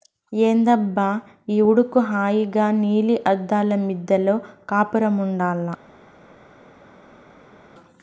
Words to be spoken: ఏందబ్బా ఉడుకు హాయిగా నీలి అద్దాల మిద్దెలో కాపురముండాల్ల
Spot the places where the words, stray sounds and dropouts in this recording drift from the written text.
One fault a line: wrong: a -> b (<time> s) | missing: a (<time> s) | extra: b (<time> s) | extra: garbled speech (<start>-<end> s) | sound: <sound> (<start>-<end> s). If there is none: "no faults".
extra: ఈ (1.5 s)